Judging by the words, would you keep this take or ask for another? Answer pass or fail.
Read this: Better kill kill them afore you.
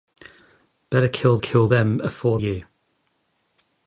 pass